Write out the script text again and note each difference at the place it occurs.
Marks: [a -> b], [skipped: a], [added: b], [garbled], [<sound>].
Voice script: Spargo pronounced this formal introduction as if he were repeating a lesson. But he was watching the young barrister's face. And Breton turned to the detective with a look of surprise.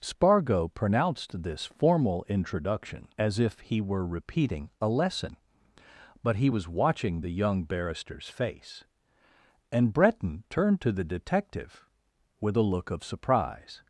Spargo pronounced this formal introduction as if he were repeating a lesson. But he was watching the young barrister's face. And Breton turned to the detective with a look of surprise.